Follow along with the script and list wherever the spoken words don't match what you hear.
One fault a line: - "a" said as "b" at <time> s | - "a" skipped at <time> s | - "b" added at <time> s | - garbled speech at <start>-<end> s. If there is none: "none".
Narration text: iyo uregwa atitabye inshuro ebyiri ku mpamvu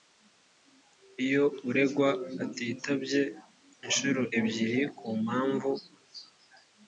none